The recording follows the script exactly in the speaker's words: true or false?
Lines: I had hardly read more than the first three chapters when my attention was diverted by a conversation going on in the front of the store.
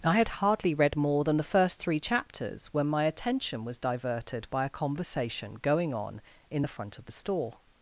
true